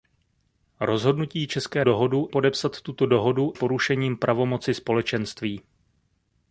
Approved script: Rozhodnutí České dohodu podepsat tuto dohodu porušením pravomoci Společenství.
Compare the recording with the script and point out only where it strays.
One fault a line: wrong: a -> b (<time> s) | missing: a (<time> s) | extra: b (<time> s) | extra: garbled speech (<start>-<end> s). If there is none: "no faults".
no faults